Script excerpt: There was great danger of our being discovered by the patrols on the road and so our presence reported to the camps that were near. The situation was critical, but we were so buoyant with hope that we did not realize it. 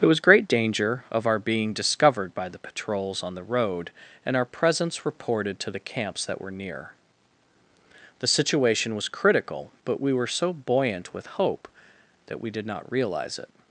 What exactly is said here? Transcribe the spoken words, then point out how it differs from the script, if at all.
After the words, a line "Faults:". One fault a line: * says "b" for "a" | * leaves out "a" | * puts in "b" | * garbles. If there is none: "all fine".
There was great danger of our being discovered by the patrols on the road and our presence reported to the camps that were near. The situation was critical, but we were so buoyant with hope that we did not realize it.
Faults:
* leaves out "so"